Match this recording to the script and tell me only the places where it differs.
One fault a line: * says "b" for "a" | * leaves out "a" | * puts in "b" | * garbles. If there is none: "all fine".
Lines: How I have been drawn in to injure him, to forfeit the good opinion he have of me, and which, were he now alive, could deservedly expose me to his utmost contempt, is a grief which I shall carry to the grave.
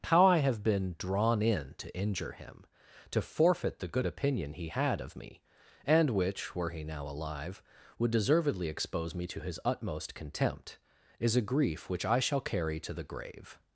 * says "had" for "have"
* says "would" for "could"